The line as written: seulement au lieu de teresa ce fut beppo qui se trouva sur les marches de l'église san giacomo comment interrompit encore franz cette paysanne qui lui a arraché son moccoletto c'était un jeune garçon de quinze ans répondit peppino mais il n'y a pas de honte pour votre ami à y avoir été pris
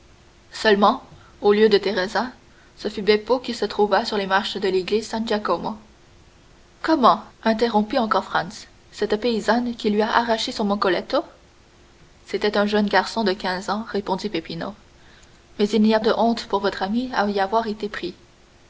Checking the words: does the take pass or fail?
fail